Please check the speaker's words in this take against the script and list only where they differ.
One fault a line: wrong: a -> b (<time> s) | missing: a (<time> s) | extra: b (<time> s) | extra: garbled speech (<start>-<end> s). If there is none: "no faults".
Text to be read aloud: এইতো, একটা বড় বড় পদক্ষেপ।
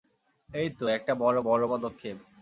no faults